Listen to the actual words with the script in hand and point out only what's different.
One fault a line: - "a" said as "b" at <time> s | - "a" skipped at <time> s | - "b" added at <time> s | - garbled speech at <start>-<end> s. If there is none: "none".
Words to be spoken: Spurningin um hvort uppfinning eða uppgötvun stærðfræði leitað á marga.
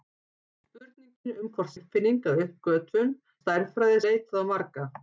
none